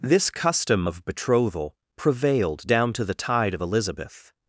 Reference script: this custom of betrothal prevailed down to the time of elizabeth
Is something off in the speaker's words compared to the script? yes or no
yes